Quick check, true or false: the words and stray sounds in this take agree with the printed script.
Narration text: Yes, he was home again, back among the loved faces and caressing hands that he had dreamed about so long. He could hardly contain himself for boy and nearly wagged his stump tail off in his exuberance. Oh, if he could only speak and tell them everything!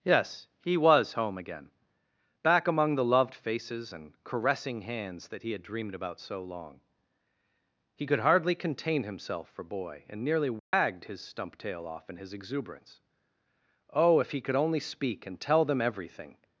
false